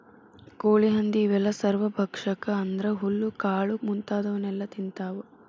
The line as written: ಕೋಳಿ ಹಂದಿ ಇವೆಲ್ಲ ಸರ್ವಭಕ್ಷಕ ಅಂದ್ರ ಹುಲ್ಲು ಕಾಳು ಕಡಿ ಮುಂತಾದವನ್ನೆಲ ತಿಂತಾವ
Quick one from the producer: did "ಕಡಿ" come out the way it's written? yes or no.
no